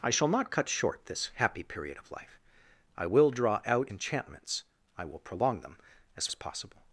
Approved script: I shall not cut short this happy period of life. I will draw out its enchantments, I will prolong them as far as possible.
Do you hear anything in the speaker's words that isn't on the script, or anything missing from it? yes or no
yes